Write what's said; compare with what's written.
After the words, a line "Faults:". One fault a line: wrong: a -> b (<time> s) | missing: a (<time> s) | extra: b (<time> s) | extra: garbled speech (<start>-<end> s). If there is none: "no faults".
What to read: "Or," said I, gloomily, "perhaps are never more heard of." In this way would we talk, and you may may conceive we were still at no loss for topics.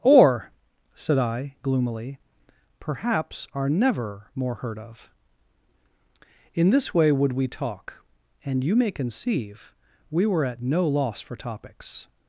"Or," said I, gloomily, "perhaps are never more heard of." In this way would we talk, and you may conceive we were at no loss for topics.
Faults:
missing: may (8.9 s)
missing: still (10.5 s)